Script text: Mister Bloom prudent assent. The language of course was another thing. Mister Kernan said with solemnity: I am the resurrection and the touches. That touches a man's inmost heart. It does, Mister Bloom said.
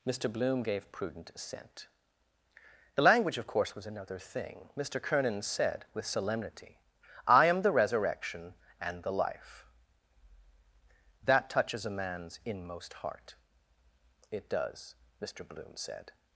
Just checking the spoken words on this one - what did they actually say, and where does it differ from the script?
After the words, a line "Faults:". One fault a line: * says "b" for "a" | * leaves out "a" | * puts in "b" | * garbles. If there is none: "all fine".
Mister Bloom gave prudent assent. The language of course was another thing. Mister Kernan said with solemnity: I am the resurrection and the life. That touches a man's inmost heart. It does, Mister Bloom said.
Faults:
* puts in "gave"
* says "life" for "touches"